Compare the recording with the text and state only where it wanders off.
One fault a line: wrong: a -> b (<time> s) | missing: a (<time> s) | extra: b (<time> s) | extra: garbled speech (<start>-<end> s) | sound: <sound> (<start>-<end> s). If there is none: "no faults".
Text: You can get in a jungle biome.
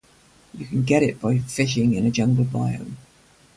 extra: it by fishing (1.0 s)